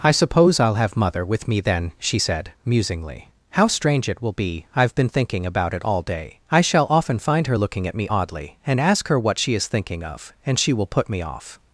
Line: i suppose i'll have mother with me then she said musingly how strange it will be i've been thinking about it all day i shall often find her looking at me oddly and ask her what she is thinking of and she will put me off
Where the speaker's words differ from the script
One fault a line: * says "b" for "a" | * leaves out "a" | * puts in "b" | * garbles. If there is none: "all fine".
all fine